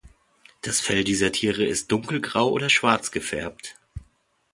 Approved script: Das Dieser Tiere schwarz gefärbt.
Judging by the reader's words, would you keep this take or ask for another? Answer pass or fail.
fail